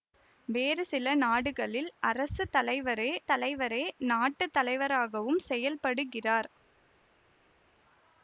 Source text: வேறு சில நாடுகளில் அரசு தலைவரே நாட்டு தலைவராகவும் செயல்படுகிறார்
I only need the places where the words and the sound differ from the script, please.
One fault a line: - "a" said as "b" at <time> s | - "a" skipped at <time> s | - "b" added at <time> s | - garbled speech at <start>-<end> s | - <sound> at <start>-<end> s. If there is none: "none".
- "தலைவரே" added at 3.3 s